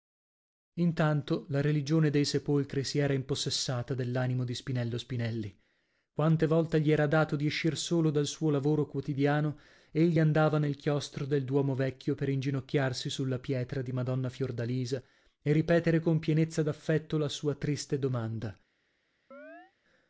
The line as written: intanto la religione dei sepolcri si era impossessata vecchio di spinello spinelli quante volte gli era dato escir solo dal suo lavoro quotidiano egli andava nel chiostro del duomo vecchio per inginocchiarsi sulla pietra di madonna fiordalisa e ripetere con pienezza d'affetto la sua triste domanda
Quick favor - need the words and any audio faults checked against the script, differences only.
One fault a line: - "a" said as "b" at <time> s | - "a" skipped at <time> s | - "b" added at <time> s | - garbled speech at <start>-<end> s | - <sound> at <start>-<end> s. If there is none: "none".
- "vecchio" said as "dell'animo" at 3.9 s
- "di" added at 7.3 s
- chirp at 19.3-19.7 s